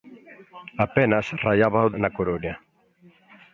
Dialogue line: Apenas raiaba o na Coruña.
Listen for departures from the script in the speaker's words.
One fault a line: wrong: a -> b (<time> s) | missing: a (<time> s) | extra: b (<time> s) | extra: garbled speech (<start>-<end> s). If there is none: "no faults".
no faults